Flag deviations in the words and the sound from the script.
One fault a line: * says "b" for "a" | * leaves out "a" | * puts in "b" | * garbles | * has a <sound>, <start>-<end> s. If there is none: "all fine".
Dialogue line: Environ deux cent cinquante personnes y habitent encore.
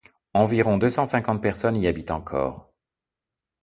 all fine